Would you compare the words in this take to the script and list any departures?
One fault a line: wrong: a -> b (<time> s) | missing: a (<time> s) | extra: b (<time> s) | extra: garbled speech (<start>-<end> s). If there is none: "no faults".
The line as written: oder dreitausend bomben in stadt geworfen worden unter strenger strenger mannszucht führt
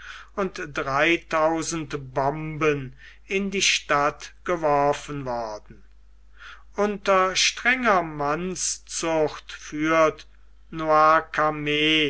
wrong: oder -> und (0.3 s)
extra: die (3.5 s)
missing: strenger (8.0 s)